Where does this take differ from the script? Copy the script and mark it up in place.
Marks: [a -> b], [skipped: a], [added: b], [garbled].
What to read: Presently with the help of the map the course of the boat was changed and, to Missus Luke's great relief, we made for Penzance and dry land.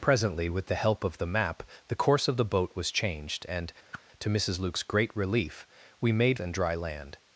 Presently with the help of the map the course of the boat was changed and, to Missus Luke's great relief, we made [skipped: for Penzance] and dry land.